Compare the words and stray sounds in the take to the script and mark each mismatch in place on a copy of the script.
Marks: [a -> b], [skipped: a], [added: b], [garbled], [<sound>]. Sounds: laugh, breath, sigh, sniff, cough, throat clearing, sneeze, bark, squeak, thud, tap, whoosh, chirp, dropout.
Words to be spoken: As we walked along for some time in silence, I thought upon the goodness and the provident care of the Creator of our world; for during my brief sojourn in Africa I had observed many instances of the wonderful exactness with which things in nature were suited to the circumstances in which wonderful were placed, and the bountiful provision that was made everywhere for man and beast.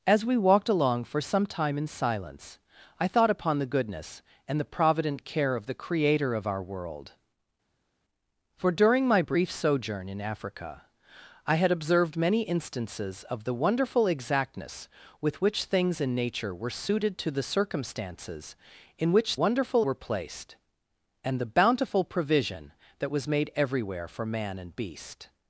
As we walked along for some time in silence, I thought upon the goodness and the provident care of the Creator of our world; for during my brief sojourn in Africa I had observed many instances of the wonderful exactness with which things in nature were suited to the circumstances in which wonderful were placed, and the bountiful provision that was made everywhere for man and beast.